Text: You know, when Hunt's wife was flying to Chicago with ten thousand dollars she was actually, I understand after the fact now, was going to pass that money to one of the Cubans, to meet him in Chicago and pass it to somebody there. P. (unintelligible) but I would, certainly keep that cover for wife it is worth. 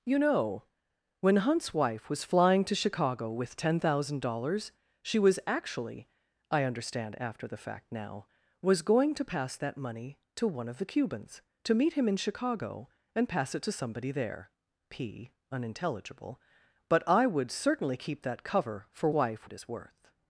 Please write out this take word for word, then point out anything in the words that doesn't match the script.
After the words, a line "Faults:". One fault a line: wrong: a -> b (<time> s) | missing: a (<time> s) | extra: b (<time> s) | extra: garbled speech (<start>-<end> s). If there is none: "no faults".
You know, when Hunt's wife was flying to Chicago with ten thousand dollars she was actually, I understand after the fact now, was going to pass that money to one of the Cubans, to meet him in Chicago and pass it to somebody there. P. (unintelligible) but I would, certainly keep that cover for wife it is worth.
Faults:
no faults